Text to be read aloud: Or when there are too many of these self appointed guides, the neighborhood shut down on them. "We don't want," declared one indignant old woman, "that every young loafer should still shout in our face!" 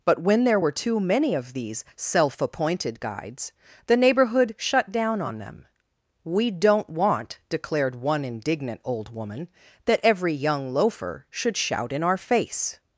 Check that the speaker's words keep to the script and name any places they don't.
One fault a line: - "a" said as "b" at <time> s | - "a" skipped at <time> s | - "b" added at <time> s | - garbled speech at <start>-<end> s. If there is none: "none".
- "Or" said as "But" at 0.0 s
- "are" said as "were" at 0.6 s
- "still" skipped at 11.6 s